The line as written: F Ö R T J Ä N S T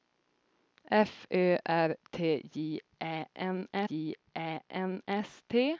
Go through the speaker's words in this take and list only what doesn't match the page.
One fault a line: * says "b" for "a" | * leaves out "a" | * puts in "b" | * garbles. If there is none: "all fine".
* puts in "J Ä N"